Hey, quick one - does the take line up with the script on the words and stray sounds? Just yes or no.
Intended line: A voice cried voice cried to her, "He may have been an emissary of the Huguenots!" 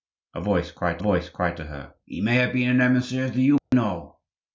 no